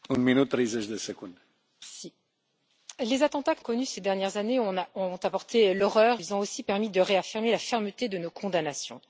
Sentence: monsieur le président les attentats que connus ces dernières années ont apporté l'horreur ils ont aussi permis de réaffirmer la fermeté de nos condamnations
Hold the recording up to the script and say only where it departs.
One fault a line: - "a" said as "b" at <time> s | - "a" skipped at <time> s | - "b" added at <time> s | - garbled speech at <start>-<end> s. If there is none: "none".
none